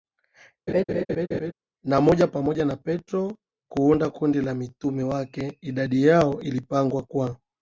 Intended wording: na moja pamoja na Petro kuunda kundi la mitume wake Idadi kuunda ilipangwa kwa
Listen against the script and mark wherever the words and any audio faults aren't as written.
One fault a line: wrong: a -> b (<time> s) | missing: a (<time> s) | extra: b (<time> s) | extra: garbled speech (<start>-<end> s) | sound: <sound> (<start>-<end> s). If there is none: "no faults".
sound: laugh (0.7-1.5 s)
wrong: kuunda -> yao (6.1 s)